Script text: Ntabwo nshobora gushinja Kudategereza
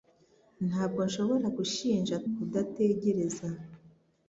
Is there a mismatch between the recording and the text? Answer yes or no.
no